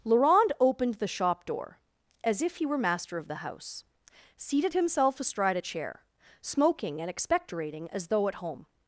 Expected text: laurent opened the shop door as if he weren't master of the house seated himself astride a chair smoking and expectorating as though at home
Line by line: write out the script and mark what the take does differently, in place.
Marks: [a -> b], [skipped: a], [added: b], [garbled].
laurent opened the shop door as if he [weren't -> were] master of the house seated himself astride a chair smoking and expectorating as though at home